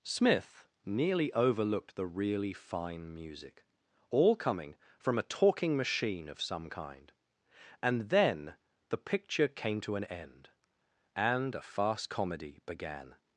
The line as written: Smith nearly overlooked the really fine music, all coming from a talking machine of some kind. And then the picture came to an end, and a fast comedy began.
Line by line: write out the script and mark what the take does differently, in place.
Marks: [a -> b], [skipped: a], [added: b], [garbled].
Smith nearly overlooked the really fine music, all coming from a talking machine of some kind. And then the picture came to an end, and a fast comedy began.